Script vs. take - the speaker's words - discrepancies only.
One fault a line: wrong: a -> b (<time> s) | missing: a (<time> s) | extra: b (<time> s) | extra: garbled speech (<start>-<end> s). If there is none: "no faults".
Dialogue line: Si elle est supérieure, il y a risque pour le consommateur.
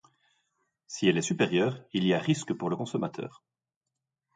no faults